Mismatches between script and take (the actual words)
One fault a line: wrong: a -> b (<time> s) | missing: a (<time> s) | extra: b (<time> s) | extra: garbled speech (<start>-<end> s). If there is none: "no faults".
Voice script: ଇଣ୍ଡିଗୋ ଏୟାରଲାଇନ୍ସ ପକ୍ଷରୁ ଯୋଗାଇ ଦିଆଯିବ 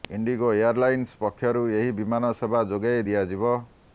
extra: ଏହି ବିମାନ ସେବା (1.7 s)